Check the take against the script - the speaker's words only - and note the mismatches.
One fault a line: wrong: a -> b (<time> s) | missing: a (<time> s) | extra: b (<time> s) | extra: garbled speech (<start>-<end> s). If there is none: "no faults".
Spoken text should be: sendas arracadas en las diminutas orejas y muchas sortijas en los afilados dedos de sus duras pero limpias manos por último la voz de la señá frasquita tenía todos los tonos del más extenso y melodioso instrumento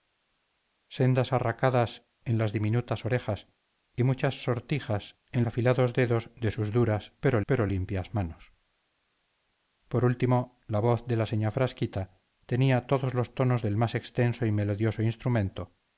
missing: los (5.4 s)
extra: pero (7.5 s)